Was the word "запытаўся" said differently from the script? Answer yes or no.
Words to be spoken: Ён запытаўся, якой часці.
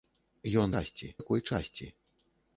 yes